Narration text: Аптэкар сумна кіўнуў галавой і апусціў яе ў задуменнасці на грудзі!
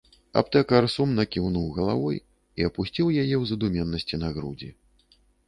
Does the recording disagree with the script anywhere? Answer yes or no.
no